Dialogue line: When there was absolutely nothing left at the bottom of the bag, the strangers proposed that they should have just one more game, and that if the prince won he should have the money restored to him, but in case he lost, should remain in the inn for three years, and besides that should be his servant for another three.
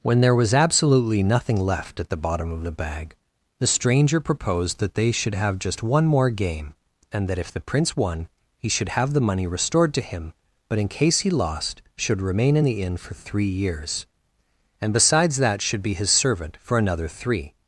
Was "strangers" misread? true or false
true